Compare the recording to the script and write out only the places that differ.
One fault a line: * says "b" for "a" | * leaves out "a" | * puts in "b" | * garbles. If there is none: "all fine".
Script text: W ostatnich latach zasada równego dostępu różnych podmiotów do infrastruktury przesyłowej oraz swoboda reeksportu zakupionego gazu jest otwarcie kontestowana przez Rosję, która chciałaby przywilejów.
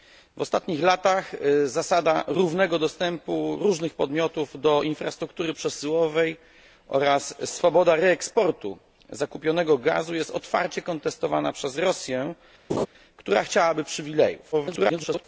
* garbles